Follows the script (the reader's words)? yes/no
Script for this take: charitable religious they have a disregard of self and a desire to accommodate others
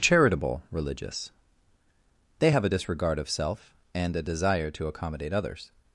yes